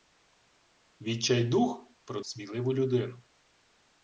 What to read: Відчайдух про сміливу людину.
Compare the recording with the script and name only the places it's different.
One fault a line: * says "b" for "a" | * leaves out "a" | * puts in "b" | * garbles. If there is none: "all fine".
all fine